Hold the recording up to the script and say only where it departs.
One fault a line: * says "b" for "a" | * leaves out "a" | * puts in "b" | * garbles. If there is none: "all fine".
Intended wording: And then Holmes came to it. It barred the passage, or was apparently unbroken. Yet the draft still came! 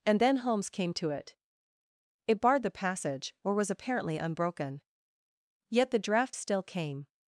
all fine